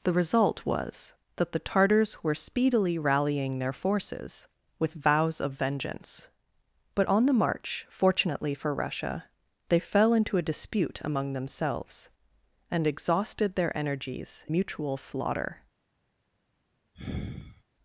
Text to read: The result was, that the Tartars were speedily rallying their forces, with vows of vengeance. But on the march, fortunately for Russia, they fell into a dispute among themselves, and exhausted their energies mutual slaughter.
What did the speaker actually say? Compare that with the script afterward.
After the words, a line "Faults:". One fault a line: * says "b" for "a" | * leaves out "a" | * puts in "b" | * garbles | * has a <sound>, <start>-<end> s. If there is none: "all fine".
The result was, that the Tartars were speedily rallying their forces, with vows of vengeance. But on the march, fortunately for Russia, they fell into a dispute among themselves, and exhausted their energies mutual slaughter.
Faults:
* has a sigh, 16.9-17.6 s